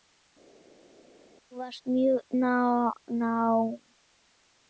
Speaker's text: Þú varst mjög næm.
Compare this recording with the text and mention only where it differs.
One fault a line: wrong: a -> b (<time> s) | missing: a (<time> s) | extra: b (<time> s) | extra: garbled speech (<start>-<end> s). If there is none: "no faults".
no faults